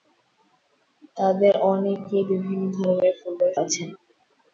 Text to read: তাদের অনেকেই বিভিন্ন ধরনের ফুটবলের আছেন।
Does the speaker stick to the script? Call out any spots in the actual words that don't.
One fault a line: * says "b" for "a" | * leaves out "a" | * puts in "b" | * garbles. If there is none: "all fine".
all fine